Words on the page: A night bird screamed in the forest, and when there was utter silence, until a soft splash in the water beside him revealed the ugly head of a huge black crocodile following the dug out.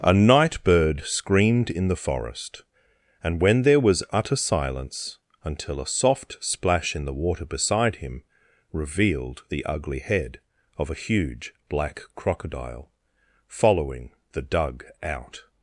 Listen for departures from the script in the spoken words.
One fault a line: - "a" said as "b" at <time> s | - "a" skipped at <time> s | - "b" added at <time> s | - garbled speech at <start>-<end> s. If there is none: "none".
none